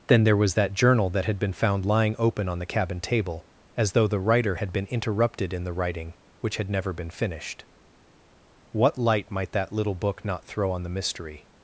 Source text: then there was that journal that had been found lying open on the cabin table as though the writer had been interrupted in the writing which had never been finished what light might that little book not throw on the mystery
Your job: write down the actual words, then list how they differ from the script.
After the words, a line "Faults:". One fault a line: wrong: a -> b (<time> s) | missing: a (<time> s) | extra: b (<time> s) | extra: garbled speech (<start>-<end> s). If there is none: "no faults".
then there was that journal that had been found lying open on the cabin table as though the writer had been interrupted in the writing which had never been finished what light might that little book not throw on the mystery
Faults:
no faults